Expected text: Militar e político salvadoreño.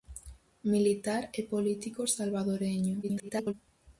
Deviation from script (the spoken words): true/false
true